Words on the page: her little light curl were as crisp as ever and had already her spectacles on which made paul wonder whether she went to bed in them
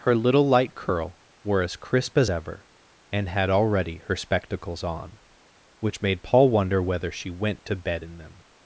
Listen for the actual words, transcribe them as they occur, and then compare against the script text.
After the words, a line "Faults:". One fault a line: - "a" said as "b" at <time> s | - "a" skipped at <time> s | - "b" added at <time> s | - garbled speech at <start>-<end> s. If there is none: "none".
her little light curl were as crisp as ever and had already her spectacles on which made paul wonder whether she went to bed in them
Faults:
none